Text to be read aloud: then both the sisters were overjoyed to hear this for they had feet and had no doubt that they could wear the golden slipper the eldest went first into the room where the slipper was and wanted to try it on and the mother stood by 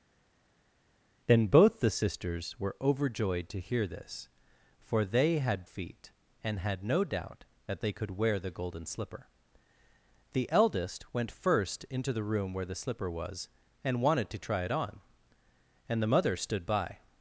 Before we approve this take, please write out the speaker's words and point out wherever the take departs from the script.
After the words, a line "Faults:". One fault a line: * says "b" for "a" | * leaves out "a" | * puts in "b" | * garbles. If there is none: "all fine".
then both the sisters were overjoyed to hear this for they had feet and had no doubt that they could wear the golden slipper the eldest went first into the room where the slipper was and wanted to try it on and the mother stood by
Faults:
all fine